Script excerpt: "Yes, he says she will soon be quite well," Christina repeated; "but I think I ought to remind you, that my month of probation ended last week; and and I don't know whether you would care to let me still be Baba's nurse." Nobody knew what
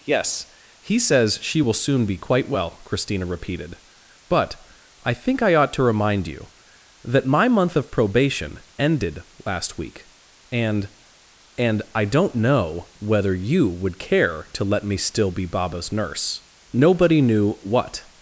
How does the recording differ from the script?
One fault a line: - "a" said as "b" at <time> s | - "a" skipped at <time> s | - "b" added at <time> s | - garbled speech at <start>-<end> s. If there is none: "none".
none